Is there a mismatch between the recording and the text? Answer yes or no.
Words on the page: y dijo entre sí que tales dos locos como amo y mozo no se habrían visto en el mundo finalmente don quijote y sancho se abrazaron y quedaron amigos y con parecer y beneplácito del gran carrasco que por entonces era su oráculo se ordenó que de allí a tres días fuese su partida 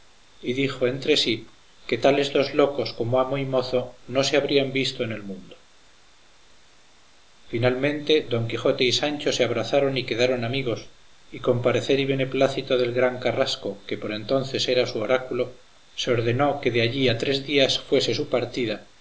no